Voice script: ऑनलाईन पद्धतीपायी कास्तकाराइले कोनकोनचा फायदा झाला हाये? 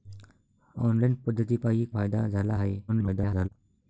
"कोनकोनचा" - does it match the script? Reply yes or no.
no